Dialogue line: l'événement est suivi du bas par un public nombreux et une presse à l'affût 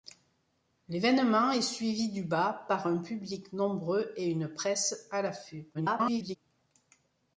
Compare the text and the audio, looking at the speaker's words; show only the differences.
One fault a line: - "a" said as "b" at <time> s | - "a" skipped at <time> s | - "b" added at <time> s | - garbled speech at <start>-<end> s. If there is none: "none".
- garbled speech at 5.7-6.4 s